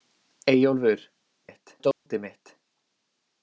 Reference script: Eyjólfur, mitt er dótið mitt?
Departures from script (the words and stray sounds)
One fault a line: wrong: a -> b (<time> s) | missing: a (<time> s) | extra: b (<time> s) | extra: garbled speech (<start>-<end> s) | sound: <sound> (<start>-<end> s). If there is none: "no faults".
sound: dropout (1.9-2.1 s)